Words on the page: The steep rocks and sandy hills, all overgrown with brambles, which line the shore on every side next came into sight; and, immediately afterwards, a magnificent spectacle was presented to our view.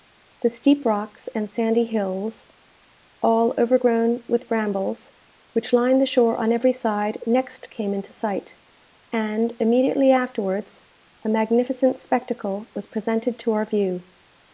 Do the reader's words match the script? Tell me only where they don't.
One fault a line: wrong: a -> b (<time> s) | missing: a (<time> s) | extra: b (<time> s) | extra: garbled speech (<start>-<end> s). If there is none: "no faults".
no faults